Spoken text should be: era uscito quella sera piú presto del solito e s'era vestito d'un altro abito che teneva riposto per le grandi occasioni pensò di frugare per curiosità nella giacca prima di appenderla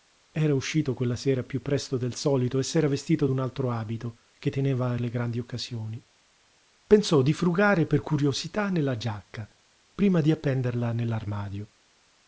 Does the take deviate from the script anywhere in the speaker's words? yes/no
yes